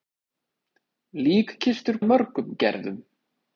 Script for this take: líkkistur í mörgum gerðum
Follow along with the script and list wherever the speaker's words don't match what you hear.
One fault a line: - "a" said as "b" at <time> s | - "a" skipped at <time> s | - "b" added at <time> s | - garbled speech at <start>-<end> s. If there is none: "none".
none